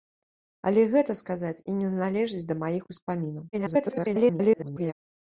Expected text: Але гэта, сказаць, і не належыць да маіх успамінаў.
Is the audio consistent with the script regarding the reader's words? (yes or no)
no